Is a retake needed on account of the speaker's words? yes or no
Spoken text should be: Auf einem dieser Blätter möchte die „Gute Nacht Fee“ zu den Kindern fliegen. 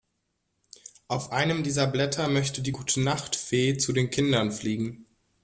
no